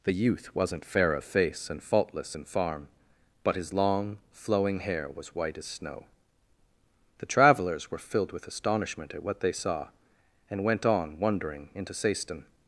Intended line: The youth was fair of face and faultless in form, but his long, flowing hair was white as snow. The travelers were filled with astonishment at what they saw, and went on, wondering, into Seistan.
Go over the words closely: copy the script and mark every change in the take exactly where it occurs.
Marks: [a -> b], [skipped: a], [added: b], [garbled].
The youth [was -> wasn't] fair of face and faultless in [form, -> farm] but his long, flowing hair was white as snow. The travelers were filled with astonishment at what they saw, and went on, wondering, into Seistan.